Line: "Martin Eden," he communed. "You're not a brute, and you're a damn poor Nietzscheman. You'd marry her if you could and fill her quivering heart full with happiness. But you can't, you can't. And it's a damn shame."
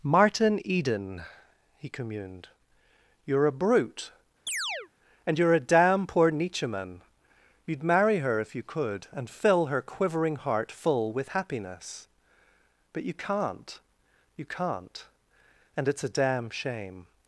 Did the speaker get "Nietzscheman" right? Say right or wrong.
right